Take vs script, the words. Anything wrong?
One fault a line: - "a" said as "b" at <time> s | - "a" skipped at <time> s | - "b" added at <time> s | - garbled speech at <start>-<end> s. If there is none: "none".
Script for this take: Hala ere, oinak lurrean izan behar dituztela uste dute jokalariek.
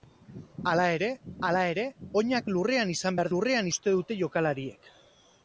- "hala ere" added at 1.5 s
- "dituztela" said as "lurrean" at 3.3 s